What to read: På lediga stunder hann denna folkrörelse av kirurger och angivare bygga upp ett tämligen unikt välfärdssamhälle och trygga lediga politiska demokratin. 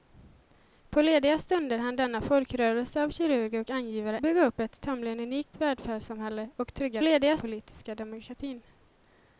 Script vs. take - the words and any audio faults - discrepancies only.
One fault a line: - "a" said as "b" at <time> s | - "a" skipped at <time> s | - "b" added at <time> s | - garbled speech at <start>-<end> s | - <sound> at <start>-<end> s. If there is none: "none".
none